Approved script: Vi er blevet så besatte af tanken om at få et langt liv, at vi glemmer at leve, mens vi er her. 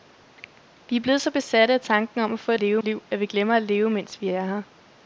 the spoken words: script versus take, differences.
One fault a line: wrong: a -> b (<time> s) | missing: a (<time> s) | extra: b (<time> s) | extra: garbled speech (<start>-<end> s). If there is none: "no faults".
wrong: langt -> leve (2.5 s)